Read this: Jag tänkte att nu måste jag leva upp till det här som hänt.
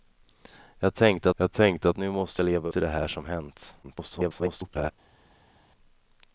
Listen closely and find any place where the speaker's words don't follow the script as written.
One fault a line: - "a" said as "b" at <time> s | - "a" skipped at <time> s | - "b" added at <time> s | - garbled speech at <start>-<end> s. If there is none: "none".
- "jag tänkte" added at 1.4 s
- "upp" skipped at 2.7 s
- garbled speech at 3.8-4.9 s